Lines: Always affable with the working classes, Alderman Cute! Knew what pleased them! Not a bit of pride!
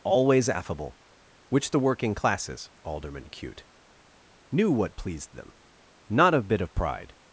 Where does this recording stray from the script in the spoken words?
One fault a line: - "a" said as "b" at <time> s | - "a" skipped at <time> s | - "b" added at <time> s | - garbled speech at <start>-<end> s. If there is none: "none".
- "with" said as "which" at 1.5 s